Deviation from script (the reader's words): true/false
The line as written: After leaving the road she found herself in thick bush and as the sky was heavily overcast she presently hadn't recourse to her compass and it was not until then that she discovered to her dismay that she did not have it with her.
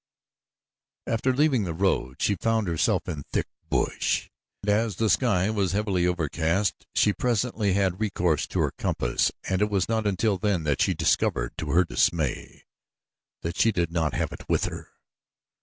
true